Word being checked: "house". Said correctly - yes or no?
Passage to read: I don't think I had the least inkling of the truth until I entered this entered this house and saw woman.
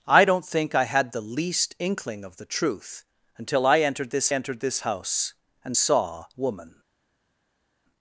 yes